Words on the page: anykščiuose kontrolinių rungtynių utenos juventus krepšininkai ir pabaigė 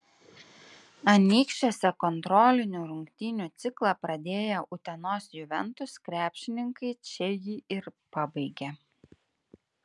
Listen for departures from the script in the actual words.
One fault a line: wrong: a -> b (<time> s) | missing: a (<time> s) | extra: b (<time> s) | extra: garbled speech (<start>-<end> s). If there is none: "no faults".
extra: ciklą pradėję (3.6 s)
extra: čia jį (7.1 s)